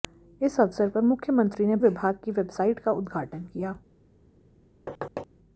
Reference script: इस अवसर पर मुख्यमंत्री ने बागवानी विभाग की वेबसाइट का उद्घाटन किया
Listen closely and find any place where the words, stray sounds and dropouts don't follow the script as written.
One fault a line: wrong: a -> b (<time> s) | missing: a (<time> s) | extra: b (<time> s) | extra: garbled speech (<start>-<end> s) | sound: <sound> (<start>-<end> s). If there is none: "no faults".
missing: बागवानी (1.8 s)
sound: thud (4.9-5.3 s)